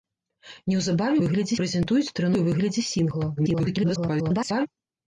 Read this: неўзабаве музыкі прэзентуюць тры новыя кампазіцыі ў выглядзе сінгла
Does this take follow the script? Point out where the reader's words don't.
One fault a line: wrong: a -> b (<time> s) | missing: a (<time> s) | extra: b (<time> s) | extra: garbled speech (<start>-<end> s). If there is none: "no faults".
wrong: музыкі -> выглядзе (1.2 s)
missing: новыя кампазіцыі (2.3 s)
extra: garbled speech (3.4-4.7 s)